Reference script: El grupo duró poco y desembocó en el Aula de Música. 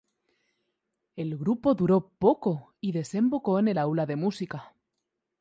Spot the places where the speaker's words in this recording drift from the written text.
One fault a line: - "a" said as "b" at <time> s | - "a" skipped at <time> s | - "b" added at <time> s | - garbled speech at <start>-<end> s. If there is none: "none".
none